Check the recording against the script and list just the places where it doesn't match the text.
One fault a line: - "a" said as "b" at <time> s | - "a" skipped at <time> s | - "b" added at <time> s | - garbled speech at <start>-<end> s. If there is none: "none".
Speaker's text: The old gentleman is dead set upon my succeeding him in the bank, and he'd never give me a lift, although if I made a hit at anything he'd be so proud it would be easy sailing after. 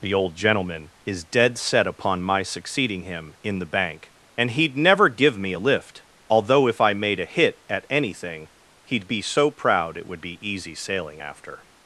none